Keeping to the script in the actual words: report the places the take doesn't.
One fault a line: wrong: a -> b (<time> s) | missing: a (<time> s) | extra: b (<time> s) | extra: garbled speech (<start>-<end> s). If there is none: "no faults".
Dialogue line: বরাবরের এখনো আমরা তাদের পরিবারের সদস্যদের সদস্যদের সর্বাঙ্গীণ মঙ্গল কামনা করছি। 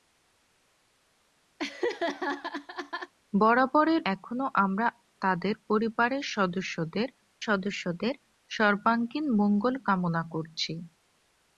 no faults